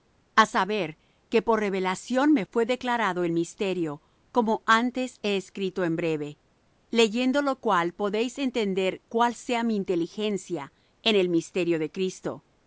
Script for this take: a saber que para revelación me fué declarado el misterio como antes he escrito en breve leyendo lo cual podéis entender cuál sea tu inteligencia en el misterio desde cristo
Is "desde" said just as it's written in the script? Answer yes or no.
no